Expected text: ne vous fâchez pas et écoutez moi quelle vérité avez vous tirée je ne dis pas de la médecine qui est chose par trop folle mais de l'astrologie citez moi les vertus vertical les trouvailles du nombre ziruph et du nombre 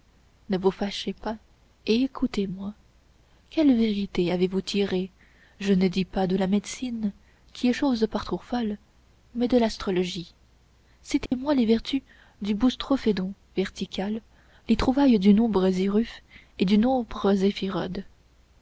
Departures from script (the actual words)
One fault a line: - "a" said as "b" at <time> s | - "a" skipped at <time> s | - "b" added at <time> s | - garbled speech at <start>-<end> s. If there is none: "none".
- "du boustrophédon" added at 12.4 s